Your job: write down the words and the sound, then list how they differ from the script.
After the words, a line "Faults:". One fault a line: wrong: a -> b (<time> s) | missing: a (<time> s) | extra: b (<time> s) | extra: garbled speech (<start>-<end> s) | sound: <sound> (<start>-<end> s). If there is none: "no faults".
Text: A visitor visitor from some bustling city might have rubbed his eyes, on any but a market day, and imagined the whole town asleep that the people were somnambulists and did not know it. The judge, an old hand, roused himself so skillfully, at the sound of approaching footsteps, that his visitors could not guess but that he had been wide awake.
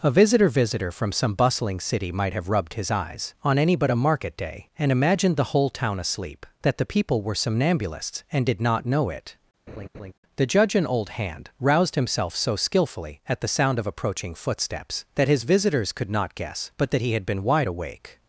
A visitor visitor from some bustling city might have rubbed his eyes, on any but a market day, and imagined the whole town asleep that the people were somnambulists and did not know it. The judge, an old hand, roused himself so skillfully, at the sound of approaching footsteps, that his visitors could not guess but that he had been wide awake.
Faults:
sound: laugh (9.7-10.1 s)